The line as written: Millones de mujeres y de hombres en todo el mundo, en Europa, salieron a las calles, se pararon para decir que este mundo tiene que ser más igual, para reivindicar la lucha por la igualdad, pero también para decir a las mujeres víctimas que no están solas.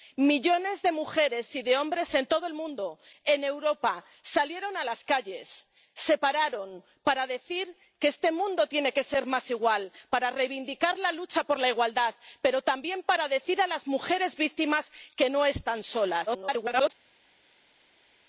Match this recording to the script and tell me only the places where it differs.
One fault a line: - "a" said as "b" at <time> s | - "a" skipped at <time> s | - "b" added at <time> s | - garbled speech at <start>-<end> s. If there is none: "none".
- garbled speech at 16.3-16.9 s